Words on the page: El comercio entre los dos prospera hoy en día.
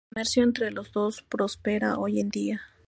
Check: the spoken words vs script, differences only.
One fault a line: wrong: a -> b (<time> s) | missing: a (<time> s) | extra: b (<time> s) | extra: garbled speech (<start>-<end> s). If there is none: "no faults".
no faults